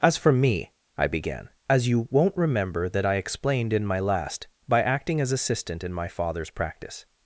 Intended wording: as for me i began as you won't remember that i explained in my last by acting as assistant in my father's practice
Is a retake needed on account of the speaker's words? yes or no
no